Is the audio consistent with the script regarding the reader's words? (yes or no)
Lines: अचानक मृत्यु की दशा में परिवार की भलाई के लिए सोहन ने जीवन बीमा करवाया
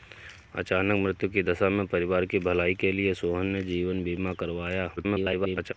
no